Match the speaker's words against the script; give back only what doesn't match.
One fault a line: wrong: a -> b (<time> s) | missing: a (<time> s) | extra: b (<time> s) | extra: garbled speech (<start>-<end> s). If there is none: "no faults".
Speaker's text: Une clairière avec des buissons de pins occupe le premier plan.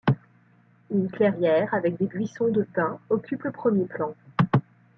no faults